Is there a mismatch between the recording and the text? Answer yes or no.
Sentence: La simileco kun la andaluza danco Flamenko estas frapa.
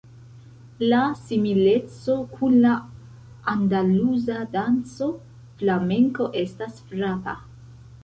no